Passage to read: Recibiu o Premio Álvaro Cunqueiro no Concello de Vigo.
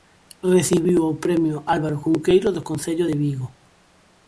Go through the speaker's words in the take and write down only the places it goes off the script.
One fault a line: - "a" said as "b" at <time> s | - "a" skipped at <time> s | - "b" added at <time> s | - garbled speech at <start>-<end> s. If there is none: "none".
- "no" said as "do" at 2.5 s